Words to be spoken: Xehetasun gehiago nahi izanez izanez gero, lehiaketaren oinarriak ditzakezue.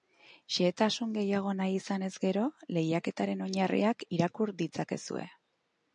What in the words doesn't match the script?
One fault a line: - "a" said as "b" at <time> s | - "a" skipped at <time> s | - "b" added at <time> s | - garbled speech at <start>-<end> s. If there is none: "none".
- "izanez" skipped at 2.1 s
- "irakur" added at 4.2 s